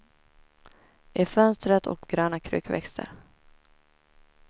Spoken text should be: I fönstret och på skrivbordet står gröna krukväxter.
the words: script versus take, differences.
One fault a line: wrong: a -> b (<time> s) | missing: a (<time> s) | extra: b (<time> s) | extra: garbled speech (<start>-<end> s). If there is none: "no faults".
missing: på skrivbordet står (2.1 s)